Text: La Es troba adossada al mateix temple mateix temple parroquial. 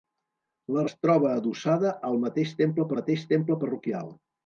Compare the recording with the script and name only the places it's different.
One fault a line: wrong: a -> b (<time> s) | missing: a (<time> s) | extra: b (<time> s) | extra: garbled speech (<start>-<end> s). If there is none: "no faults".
no faults